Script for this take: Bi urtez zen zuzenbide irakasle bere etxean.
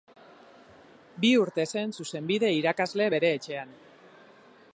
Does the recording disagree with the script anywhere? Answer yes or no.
no